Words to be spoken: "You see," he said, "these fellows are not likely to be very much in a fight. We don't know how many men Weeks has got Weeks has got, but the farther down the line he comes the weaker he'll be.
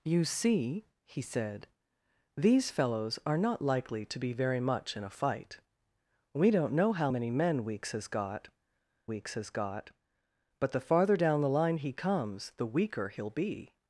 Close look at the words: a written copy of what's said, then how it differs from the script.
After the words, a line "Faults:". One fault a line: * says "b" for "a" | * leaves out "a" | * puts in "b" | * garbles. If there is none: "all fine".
"You see," he said, "these fellows are not likely to be very much in a fight. We don't know how many men Weeks has got Weeks has got, but the farther down the line he comes the weaker he'll be.
Faults:
all fine